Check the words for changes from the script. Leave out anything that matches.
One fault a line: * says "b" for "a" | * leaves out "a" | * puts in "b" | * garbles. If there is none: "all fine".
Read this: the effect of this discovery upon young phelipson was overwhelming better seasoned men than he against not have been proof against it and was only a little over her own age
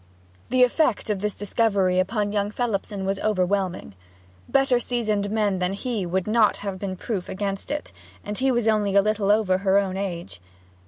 * says "would" for "against"
* puts in "he"